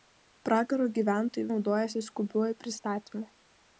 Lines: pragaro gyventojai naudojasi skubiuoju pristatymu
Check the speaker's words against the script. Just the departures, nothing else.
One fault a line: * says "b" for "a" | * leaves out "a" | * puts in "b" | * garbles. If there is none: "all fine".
all fine